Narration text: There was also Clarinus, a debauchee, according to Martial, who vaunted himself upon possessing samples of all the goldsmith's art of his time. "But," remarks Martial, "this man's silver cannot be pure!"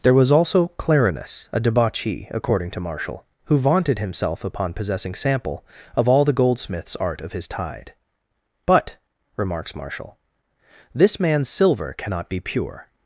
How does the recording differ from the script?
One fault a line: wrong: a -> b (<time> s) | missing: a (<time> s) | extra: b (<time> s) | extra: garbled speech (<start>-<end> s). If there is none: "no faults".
wrong: samples -> sample (5.1 s)
wrong: time -> tide (7.5 s)